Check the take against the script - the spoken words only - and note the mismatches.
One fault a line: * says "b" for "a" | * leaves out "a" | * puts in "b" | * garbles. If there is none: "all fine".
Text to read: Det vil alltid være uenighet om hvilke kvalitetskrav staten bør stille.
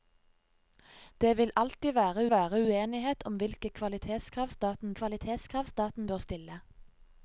* puts in "være"
* puts in "kvalitetskrav staten"